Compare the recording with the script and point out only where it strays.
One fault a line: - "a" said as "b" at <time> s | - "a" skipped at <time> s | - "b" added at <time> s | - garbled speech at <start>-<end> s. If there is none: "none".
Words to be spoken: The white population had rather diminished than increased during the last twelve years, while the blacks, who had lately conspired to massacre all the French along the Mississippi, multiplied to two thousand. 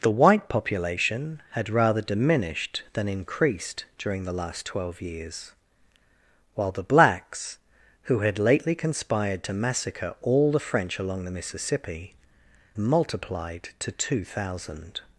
none